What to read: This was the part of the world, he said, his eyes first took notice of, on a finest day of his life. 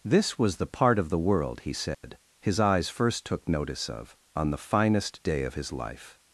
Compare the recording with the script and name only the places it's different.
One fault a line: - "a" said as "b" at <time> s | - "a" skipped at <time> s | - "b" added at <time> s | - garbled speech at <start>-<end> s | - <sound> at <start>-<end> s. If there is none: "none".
- dropout at 1.9-2.0 s
- "a" said as "the" at 4.5 s